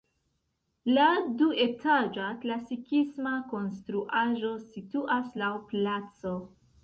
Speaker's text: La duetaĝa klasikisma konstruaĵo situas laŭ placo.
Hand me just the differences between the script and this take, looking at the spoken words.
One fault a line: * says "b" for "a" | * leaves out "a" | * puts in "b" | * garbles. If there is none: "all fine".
all fine